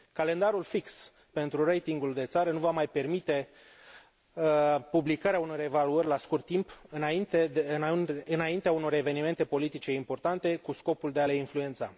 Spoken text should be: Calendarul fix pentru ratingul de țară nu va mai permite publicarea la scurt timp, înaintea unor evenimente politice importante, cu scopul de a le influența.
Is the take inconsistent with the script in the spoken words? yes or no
yes